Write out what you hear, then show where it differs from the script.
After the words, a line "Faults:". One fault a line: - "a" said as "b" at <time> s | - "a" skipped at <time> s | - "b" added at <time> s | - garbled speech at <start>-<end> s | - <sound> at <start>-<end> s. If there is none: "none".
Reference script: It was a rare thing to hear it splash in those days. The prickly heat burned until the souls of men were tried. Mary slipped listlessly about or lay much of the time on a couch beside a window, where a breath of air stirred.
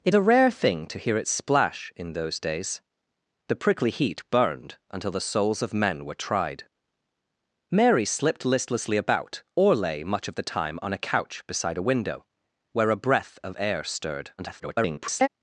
It a rare thing to hear it splash in those days. The prickly heat burned until the souls of men were tried. Mary slipped listlessly about or lay much of the time on a couch beside a window, where a breath of air stirred. [garbled]
Faults:
- "was" skipped at 0.1 s
- garbled speech at 14.4-15.3 s